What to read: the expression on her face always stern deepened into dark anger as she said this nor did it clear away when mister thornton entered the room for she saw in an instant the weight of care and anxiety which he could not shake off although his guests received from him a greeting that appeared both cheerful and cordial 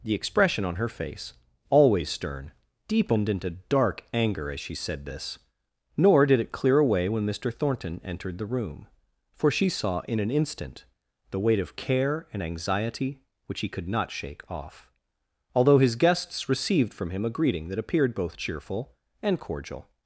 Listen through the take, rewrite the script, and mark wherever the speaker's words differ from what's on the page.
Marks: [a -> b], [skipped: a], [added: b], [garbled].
the expression on her face always stern deepened into dark anger as she said this nor did it clear away when mister thornton entered the room for she saw in an instant the weight of care and anxiety which he could not shake off although his guests received from him a greeting that appeared both cheerful and cordial